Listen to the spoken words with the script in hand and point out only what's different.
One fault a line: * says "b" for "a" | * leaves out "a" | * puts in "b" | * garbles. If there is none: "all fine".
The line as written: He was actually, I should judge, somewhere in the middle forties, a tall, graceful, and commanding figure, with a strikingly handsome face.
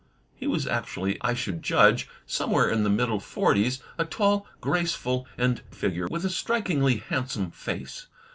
* leaves out "commanding"